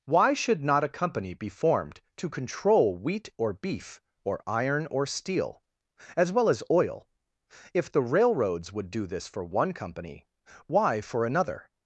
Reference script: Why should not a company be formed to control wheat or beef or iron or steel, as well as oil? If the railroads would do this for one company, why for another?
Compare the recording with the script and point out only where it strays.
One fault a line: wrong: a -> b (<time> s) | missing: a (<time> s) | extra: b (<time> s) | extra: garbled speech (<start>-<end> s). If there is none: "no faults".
no faults